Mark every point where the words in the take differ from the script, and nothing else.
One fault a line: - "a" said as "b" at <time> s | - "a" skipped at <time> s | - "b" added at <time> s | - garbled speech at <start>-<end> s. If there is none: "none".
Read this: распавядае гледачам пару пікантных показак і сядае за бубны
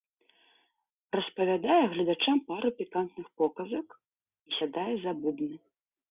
none